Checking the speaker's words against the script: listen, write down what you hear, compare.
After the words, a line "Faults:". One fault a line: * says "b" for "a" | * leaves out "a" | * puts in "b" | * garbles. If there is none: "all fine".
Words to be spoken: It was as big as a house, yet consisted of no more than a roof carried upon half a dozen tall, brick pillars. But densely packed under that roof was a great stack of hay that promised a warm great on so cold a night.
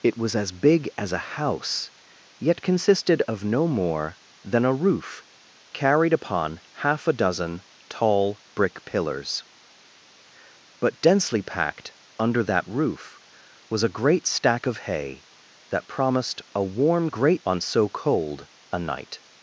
It was as big as a house, yet consisted of no more than a roof carried upon half a dozen tall, brick pillars. But densely packed under that roof was a great stack of hay that promised a warm great on so cold a night.
Faults:
all fine